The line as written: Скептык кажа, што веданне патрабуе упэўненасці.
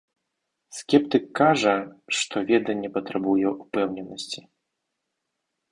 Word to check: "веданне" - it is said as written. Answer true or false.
true